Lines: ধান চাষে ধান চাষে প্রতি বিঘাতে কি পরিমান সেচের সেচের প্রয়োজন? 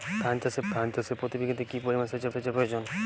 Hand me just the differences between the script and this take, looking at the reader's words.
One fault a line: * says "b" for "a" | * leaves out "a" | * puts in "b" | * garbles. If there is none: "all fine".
all fine